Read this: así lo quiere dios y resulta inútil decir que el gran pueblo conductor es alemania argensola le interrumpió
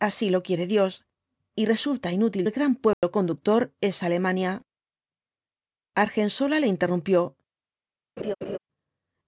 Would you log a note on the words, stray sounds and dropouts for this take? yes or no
yes